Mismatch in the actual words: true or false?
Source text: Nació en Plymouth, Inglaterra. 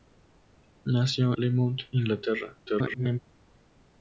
true